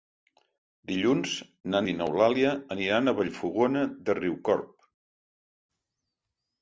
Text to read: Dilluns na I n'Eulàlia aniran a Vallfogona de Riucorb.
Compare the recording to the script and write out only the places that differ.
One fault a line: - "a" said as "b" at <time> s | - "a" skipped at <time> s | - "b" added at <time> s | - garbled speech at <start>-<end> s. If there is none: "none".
none